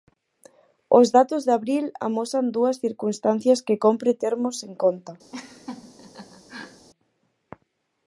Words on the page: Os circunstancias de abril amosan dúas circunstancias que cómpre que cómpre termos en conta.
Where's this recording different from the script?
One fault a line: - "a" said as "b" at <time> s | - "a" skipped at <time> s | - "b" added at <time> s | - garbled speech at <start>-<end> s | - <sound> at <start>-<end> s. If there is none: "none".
- "circunstancias" said as "datos" at 1.2 s
- "que cómpre" skipped at 4.1 s
- laugh at 5.3-6.9 s